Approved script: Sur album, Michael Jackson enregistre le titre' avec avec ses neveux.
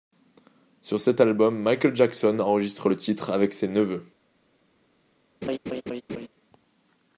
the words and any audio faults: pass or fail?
fail